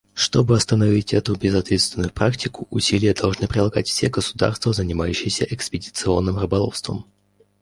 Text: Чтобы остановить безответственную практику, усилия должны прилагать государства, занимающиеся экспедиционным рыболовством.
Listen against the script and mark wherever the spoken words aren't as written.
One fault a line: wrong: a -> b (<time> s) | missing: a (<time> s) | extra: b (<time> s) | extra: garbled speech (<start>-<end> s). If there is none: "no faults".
extra: эту (1.1 s)
extra: все (3.9 s)